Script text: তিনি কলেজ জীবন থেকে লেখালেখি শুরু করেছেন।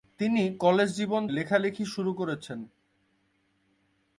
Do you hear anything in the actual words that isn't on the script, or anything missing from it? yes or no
yes